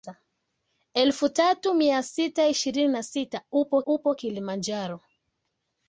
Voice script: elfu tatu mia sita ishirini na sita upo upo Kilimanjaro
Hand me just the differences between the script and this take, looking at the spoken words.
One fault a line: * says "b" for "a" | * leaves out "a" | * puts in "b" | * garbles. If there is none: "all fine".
all fine